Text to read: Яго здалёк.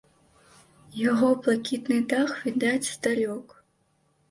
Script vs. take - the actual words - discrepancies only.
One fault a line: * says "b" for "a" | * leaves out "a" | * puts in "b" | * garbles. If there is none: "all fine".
* puts in "блакітны дах відаць"